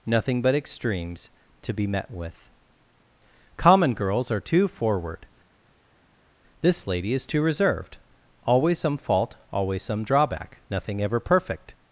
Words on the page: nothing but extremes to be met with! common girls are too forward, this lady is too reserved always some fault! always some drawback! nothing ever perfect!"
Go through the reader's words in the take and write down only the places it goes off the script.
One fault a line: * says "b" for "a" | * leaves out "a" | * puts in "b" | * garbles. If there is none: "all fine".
all fine